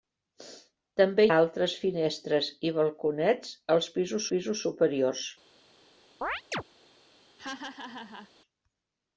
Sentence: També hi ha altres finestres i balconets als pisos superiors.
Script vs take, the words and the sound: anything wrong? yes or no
yes